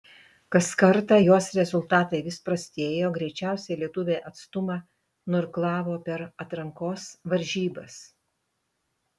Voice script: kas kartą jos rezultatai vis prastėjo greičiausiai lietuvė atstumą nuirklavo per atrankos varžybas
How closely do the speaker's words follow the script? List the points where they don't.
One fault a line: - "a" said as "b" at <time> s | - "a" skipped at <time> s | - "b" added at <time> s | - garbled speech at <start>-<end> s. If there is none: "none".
none